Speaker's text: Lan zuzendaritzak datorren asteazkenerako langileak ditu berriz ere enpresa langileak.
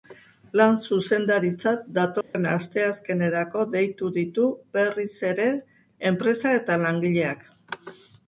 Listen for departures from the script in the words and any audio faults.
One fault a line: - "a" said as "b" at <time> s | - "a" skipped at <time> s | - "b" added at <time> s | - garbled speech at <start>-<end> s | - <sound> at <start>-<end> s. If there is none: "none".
- dropout at 2.2-2.3 s
- "langileak" said as "deitu" at 3.8 s
- "eta" added at 6.6 s